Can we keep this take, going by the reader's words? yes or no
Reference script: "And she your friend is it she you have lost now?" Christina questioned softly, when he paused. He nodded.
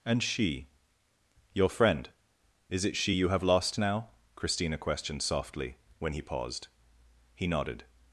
yes